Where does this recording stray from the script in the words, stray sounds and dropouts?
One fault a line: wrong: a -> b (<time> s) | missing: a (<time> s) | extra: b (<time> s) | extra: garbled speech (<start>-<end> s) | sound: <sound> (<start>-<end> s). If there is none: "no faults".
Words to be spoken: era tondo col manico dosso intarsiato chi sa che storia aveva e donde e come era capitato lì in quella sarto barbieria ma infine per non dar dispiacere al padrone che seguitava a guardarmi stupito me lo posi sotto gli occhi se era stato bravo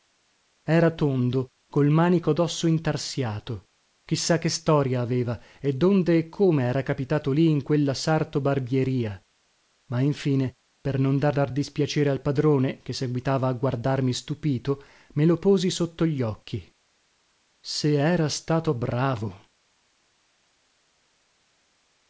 extra: dar (11.3 s)